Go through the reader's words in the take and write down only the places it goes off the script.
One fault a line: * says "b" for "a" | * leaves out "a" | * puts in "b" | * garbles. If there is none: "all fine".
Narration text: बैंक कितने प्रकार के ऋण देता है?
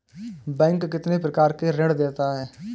all fine